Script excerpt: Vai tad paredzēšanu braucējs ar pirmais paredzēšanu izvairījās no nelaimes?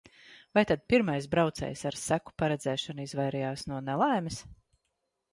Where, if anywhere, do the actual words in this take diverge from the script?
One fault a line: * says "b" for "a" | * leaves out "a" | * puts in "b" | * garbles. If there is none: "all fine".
* says "pirmais" for "paredzēšanu"
* says "seku" for "pirmais"